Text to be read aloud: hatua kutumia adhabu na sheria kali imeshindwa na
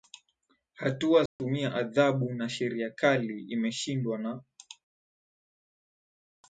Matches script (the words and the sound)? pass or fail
fail